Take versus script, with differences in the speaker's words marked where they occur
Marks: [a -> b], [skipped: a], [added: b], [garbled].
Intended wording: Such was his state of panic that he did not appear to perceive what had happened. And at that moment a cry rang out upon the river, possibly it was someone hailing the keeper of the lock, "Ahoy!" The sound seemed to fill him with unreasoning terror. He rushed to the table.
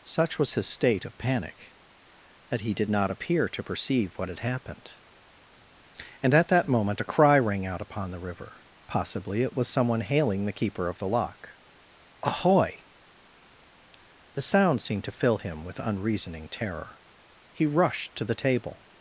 Such was his state of panic that he did not appear to perceive what had happened. And at that moment a cry rang out upon the river, possibly it was someone hailing the keeper of the lock, "Ahoy!" The sound seemed to fill him with unreasoning terror. He rushed to the table.